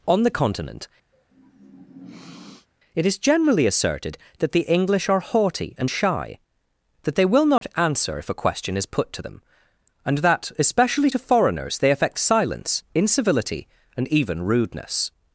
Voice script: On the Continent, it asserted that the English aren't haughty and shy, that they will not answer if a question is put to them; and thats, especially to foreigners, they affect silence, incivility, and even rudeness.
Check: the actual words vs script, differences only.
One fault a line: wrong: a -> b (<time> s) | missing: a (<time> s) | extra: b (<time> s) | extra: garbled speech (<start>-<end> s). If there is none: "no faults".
extra: is generally (3.0 s)
wrong: aren't -> are (5.1 s)
wrong: thats -> that (10.2 s)